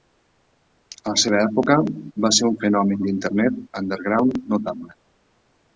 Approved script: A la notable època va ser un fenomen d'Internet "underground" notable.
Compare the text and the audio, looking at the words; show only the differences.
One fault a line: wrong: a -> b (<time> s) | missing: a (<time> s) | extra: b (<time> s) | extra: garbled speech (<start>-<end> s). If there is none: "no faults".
wrong: notable -> seva (1.2 s)